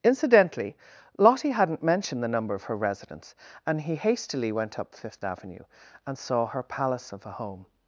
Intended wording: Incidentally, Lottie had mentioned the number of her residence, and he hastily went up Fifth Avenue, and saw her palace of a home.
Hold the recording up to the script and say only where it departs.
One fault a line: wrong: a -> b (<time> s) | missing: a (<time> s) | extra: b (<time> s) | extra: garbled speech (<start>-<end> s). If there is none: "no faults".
wrong: had -> hadn't (1.5 s)